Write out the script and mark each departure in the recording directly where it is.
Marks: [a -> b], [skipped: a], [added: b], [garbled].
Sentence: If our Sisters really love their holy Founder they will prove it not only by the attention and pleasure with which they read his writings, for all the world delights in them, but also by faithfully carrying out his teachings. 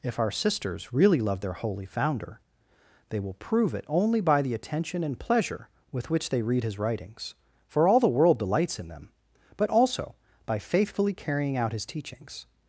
If our Sisters really love their holy Founder they will prove it [skipped: not] only by the attention and pleasure with which they read his writings, for all the world delights in them, but also by faithfully carrying out his teachings.